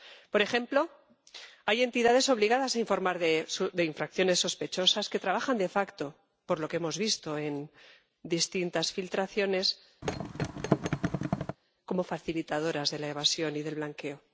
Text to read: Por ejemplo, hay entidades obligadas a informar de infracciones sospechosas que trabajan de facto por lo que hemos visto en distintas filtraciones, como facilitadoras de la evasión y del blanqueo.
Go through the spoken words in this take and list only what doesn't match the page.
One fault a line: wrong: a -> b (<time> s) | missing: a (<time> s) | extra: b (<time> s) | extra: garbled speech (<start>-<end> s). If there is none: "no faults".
no faults